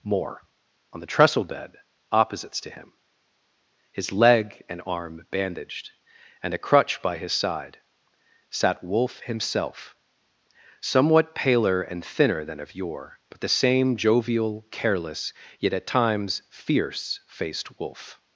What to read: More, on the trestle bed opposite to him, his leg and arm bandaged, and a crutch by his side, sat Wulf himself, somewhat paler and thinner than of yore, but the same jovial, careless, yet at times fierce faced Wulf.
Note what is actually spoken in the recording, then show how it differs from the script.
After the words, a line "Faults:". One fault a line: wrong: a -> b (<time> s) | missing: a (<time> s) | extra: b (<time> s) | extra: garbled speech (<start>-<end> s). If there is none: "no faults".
More, on the trestle bed opposites to him, his leg and arm bandaged, and a crutch by his side, sat Wulf himself, somewhat paler and thinner than of yore, but the same jovial, careless, yet at times fierce faced Wulf.
Faults:
wrong: opposite -> opposites (2.1 s)